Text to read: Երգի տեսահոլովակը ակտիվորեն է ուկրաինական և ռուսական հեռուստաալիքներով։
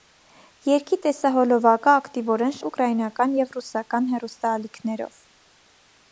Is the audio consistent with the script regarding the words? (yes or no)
yes